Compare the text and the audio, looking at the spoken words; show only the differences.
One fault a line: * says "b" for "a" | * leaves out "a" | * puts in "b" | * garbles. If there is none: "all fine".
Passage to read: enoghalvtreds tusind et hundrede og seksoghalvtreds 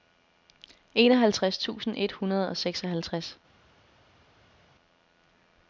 all fine